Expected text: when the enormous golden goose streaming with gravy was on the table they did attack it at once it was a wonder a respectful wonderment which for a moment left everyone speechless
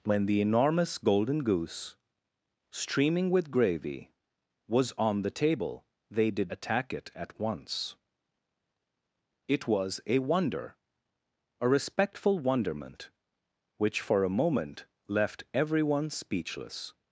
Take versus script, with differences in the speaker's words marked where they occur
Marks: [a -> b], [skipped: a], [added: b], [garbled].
when the enormous golden goose streaming with gravy was on the table they did attack it at once it was a wonder a respectful wonderment which for a moment left everyone speechless